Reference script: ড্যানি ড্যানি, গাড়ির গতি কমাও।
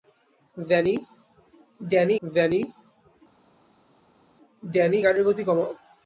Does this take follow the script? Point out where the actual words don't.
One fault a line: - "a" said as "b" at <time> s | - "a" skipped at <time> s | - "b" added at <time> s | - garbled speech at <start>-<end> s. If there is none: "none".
none